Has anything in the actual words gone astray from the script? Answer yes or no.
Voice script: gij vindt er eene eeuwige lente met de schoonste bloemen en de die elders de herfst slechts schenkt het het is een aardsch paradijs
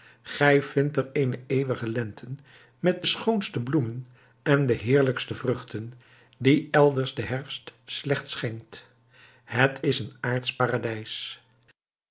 yes